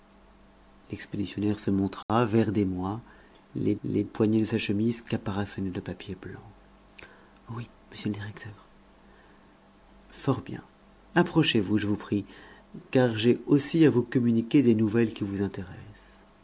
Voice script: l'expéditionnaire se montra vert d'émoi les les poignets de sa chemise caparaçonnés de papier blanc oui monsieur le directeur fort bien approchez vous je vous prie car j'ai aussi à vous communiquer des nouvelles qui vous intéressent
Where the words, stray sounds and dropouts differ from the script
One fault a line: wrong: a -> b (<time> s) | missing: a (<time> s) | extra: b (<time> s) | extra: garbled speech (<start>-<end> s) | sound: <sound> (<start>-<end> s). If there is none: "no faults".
sound: dropout (2.0-2.1 s)